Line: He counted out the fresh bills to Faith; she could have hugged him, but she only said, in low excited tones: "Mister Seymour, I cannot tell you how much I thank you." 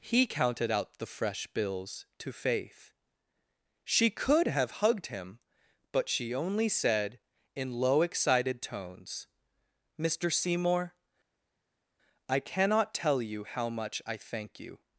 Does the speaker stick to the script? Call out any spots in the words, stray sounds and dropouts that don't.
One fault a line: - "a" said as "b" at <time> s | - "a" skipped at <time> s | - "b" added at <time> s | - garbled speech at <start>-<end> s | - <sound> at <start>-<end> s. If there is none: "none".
none